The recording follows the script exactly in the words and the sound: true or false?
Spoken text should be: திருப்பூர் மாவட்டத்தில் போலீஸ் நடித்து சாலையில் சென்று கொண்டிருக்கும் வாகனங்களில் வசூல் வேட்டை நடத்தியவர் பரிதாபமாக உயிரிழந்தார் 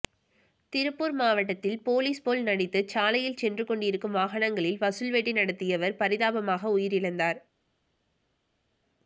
false